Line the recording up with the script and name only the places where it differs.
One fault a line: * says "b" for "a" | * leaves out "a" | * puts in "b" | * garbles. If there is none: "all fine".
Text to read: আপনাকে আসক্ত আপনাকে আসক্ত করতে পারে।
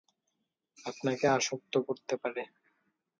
* leaves out "আপনাকে আসক্ত"